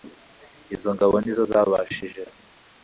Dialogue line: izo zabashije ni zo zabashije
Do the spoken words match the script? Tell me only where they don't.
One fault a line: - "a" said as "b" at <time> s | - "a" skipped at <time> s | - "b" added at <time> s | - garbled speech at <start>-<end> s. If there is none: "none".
- "zabashije" said as "ngabo" at 0.9 s